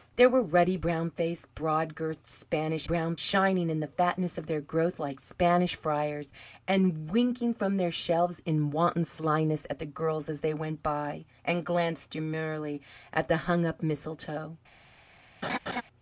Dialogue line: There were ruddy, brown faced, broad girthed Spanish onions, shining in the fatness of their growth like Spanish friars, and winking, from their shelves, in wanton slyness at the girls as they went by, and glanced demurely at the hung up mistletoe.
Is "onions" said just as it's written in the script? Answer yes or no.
no